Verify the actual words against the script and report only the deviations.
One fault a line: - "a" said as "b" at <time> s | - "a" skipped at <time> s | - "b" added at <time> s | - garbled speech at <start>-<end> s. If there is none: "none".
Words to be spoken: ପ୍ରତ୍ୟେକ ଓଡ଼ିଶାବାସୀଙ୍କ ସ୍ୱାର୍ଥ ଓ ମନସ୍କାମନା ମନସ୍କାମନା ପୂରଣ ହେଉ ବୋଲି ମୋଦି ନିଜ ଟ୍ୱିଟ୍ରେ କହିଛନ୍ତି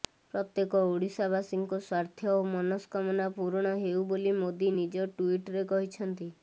- "ମନସ୍କାମନା" skipped at 3.3 s